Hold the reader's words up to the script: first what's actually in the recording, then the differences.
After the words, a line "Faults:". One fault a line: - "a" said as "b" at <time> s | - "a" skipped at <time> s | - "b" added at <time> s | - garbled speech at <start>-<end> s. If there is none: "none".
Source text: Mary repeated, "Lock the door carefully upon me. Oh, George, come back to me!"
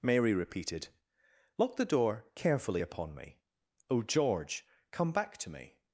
Mary repeated, "Lock the door carefully upon me. Oh, George, come back to me!"
Faults:
none